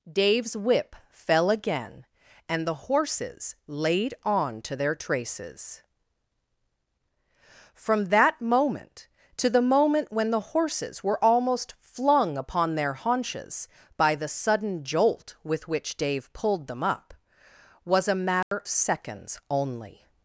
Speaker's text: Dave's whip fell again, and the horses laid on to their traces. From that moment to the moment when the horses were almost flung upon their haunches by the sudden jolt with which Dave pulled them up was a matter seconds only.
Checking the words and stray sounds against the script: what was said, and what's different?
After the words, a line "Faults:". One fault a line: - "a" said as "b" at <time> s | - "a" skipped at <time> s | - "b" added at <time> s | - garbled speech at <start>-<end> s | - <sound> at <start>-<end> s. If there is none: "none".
Dave's whip fell again, and the horses laid on to their traces. From that moment to the moment when the horses were almost flung upon their haunches by the sudden jolt with which Dave pulled them up was a matter seconds only.
Faults:
- dropout at 18.4-18.5 s